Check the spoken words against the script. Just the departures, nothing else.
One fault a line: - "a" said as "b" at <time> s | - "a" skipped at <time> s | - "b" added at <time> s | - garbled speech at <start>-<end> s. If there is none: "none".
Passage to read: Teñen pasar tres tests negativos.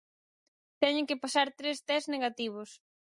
- "que" added at 1.1 s